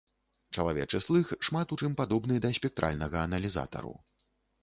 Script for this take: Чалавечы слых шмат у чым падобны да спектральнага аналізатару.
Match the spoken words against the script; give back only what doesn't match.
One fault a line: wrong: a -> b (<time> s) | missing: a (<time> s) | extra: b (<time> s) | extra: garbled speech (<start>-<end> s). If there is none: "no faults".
no faults